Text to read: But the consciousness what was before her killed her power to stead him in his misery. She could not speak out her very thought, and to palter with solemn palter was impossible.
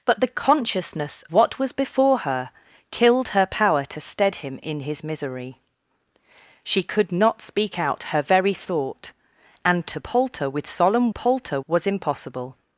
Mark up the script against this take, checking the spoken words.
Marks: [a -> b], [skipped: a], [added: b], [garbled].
But the consciousness what was before her killed her power to stead him in his misery. She could not speak out her very thought, and to palter with solemn palter was impossible.